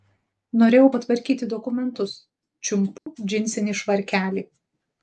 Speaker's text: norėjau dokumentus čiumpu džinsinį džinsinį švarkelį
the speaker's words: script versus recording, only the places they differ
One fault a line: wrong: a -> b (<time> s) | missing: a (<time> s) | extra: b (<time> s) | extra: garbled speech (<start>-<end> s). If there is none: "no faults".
extra: patvarkyti (0.9 s)
missing: džinsinį (3.8 s)